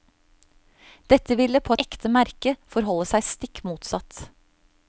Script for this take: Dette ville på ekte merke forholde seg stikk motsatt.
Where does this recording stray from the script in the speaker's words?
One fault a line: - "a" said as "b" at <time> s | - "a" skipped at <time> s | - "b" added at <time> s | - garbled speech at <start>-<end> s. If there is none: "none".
none